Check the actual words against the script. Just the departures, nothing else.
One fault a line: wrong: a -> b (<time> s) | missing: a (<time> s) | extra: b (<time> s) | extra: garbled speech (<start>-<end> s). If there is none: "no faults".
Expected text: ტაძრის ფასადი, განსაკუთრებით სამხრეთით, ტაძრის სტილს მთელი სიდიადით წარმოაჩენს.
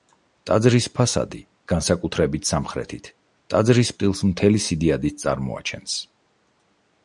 no faults